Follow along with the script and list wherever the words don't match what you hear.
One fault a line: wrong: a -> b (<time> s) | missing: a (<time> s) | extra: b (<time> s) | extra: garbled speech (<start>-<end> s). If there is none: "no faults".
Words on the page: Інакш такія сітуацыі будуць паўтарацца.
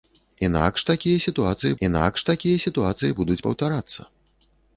extra: інакш такія сітуацыі (1.9 s)